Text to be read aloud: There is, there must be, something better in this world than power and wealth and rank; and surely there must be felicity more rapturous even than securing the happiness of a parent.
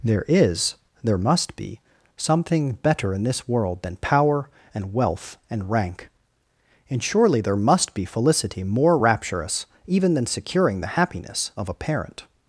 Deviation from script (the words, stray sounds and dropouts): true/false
false